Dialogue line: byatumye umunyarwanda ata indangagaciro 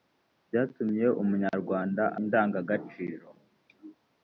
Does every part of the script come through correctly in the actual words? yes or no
no